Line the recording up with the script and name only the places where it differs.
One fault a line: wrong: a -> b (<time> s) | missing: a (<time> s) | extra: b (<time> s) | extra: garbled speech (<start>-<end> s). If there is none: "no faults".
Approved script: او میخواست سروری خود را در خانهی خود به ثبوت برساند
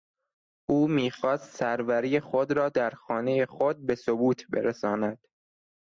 no faults